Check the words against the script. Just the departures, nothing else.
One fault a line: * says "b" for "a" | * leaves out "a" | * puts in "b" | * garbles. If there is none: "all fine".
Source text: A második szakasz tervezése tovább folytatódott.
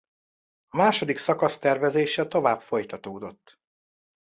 all fine